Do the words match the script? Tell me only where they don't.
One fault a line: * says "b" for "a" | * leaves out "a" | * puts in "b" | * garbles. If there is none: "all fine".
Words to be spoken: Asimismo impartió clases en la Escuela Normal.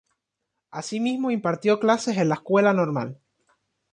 all fine